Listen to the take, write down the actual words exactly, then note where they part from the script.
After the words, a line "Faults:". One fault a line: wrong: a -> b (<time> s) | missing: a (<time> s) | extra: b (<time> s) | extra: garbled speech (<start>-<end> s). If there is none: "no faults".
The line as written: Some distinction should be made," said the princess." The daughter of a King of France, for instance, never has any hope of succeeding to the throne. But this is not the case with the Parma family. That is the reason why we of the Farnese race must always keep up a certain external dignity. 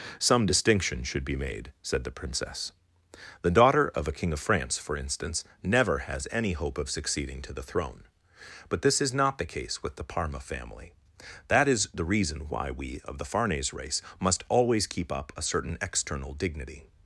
Some distinction should be made," said the princess." The daughter of a King of France, for instance, never has any hope of succeeding to the throne. But this is not the case with the Parma family. That is the reason why we of the Farnese race must always keep up a certain external dignity.
Faults:
no faults